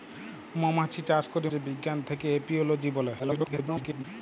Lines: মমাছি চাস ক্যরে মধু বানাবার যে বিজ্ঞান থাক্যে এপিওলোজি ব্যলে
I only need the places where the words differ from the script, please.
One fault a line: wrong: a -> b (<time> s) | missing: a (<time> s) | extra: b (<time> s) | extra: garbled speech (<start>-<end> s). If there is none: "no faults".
missing: মধু বানাবার (1.5 s)
extra: garbled speech (3.2-4.0 s)